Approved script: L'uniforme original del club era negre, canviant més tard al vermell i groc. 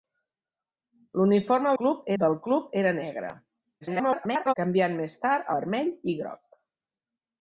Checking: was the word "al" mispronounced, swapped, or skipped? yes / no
yes